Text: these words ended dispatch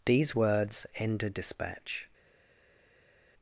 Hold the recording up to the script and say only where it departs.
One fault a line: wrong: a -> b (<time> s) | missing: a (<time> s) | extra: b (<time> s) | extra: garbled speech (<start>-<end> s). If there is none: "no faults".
no faults